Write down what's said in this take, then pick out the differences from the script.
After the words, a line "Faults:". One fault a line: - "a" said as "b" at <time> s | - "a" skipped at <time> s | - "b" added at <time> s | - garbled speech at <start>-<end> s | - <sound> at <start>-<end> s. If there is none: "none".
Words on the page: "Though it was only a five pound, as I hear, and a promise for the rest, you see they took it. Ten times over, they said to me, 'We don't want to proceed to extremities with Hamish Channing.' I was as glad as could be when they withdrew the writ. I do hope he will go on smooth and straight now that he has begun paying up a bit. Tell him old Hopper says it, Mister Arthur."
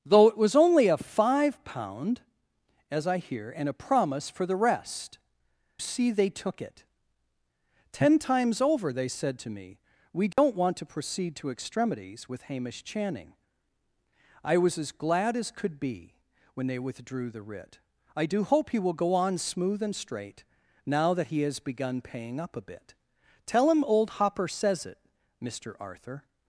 "Though it was only a five pound, as I hear, and a promise for the rest, see they took it. Ten times over, they said to me, 'We don't want to proceed to extremities with Hamish Channing.' I was as glad as could be when they withdrew the writ. I do hope he will go on smooth and straight now that he has begun paying up a bit. Tell him old Hopper says it, Mister Arthur."
Faults:
- "you" skipped at 5.2 s
- dropout at 10.3-10.4 s